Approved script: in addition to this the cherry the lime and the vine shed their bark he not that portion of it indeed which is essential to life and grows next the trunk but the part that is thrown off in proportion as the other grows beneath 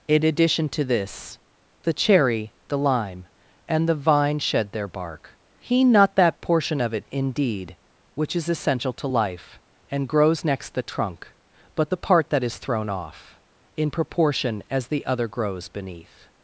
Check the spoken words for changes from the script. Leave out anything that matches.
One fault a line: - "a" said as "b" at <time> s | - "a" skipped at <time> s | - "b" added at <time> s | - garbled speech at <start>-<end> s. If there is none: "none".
none